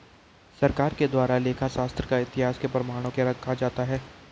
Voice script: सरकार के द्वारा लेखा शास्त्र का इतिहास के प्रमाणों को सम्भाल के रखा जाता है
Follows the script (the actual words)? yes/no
no